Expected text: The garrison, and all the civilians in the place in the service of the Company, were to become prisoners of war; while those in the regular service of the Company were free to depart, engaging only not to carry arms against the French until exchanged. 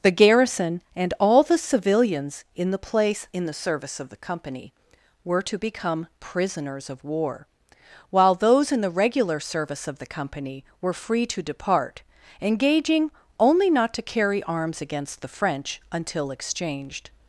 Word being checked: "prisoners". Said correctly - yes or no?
yes